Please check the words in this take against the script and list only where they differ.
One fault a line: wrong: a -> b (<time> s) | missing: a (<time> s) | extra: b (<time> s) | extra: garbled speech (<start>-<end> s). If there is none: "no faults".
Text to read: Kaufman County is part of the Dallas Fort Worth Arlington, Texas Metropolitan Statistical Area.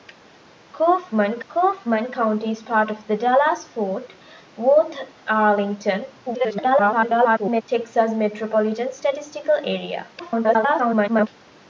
extra: kaufman (1.5 s)
extra: garbled speech (6.3-7.6 s)
extra: garbled speech (10.2-11.3 s)